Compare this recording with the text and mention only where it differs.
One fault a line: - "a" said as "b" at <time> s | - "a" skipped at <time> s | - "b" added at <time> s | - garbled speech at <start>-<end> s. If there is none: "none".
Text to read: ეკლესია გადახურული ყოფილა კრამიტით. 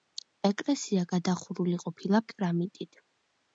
none